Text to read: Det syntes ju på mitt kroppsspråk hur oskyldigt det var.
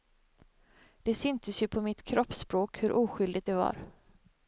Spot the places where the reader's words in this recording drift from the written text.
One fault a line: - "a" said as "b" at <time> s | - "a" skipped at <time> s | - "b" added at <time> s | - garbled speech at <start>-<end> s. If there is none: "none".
none